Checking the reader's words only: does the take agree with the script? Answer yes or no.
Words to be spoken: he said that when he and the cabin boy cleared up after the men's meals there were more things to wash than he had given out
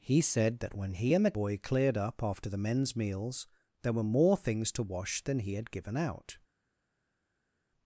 no